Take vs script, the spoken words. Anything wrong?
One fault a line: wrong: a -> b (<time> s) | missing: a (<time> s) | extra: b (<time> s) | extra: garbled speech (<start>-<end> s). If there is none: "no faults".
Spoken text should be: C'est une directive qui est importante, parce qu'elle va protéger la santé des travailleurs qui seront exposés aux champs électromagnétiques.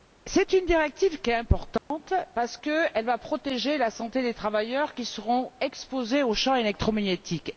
no faults